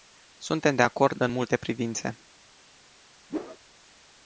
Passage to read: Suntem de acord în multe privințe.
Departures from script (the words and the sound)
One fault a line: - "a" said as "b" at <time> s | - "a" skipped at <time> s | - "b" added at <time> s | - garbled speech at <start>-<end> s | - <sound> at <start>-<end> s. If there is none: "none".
- whoosh at 3.3-3.6 s